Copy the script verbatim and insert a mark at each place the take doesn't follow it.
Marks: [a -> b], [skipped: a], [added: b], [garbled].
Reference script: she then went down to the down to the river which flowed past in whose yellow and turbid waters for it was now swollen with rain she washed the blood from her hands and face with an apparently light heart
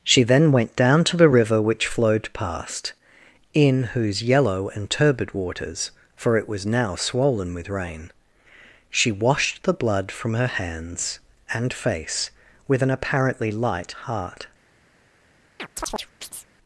she then went down to the [skipped: down to the] river which flowed past in whose yellow and turbid waters for it was now swollen with rain she washed the blood from her hands and face with an apparently light heart